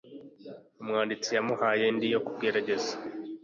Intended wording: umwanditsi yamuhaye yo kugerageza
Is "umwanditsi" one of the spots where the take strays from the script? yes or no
no